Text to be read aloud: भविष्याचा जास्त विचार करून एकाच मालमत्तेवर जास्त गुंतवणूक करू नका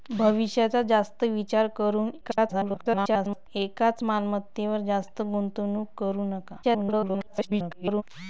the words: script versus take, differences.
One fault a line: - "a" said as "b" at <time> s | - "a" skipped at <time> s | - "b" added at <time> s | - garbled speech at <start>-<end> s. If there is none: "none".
- garbled speech at 2.2-3.5 s
- garbled speech at 6.6-8.0 s